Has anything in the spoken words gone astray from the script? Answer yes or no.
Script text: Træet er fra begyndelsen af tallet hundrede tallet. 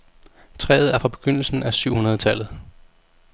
yes